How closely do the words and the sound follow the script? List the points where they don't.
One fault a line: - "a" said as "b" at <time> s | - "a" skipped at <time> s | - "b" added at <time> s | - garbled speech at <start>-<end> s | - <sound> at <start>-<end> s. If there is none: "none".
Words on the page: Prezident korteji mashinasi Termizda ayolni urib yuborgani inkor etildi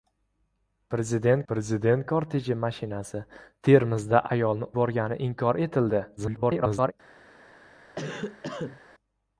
- "prezident" added at 1.5 s
- "urib" skipped at 4.7 s
- garbled speech at 6.2-6.9 s
- cough at 8.0-8.8 s